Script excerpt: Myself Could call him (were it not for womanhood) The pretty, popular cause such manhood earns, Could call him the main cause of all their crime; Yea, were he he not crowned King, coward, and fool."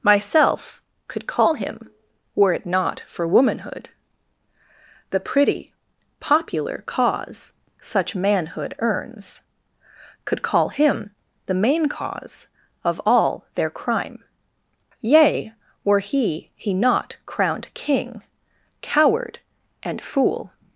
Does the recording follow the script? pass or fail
pass